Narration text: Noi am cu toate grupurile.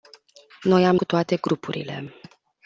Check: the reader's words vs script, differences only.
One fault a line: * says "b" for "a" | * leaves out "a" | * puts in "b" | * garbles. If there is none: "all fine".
all fine